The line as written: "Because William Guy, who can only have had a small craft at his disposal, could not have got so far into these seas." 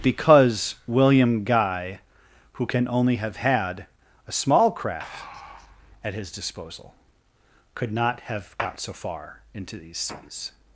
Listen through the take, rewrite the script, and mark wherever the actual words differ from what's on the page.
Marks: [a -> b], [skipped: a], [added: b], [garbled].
"Because William Guy, who can only have had a small craft at his disposal, could not have got so far into these seas."